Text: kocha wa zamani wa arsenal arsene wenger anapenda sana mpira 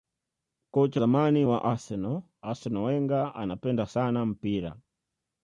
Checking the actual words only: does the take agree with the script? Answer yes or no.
no